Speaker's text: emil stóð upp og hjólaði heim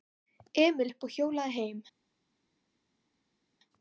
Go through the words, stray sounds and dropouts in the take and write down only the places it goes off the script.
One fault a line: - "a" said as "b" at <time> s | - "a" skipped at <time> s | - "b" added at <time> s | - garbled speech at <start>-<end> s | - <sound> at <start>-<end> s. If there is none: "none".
- "stóð" skipped at 0.9 s